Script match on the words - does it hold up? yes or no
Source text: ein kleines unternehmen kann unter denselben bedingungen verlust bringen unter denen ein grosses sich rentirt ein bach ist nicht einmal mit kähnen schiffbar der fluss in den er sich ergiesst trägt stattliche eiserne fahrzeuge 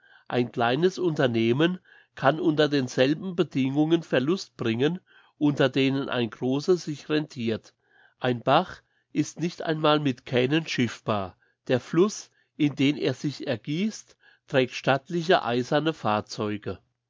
yes